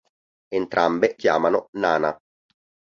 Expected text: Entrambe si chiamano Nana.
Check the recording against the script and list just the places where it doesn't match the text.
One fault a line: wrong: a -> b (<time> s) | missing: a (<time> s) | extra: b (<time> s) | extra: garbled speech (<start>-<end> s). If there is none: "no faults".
missing: si (1.2 s)